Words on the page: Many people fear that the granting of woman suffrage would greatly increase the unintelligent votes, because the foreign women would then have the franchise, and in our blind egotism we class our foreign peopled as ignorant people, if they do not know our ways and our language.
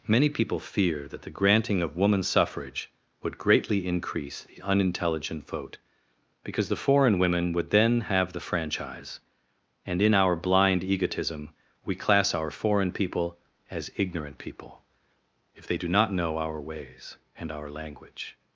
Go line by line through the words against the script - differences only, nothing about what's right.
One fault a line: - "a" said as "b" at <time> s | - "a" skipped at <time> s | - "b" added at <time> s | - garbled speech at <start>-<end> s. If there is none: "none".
- "votes" said as "vote" at 5.5 s
- "peopled" said as "people" at 12.9 s